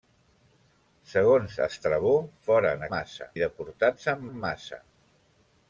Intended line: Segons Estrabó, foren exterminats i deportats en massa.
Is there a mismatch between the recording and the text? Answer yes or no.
yes